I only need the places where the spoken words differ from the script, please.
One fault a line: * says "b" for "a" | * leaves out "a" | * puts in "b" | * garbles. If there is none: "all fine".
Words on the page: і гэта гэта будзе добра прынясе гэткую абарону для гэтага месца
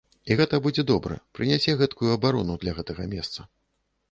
* leaves out "гэта"